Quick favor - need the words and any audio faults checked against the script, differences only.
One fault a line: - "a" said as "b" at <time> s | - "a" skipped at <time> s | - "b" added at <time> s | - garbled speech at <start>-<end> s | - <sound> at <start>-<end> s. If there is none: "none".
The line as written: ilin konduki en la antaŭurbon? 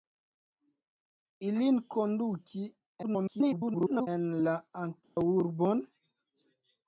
- garbled speech at 3.0-4.1 s
- dropout at 5.0-5.2 s